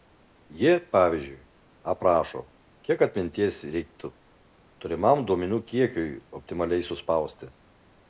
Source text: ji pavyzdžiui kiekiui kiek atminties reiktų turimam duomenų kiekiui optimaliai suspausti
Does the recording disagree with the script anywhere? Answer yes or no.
yes